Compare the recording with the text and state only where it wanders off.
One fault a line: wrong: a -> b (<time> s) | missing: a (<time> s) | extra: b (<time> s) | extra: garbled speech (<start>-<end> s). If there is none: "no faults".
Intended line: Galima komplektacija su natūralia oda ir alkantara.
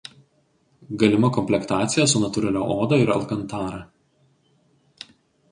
no faults